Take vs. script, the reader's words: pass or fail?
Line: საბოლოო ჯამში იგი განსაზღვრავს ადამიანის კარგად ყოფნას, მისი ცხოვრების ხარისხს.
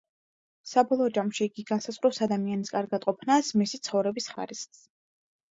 pass